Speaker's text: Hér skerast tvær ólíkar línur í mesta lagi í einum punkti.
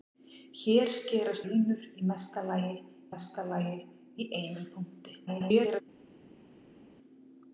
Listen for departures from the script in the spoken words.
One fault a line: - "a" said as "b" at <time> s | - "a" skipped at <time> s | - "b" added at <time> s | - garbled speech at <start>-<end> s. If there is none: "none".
- "tvær ólíkar línur í" said as "línur í mesta lagi" at 1.5 s
- garbled speech at 5.3-5.8 s